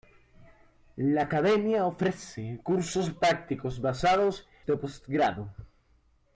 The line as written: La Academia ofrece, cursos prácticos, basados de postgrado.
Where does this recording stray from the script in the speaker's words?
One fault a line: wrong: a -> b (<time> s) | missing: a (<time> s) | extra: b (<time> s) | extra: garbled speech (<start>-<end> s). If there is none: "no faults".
no faults